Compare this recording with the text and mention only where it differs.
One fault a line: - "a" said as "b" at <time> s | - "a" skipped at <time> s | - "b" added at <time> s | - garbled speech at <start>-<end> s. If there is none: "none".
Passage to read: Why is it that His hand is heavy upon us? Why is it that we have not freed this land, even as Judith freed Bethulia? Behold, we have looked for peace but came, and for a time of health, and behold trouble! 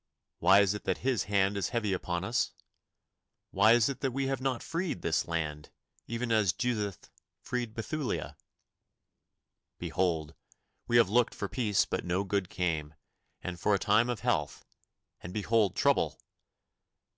- "no good" added at 12.0 s